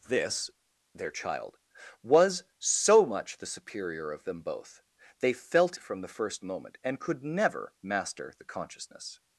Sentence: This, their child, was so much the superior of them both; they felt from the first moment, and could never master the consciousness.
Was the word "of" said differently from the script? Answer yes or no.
no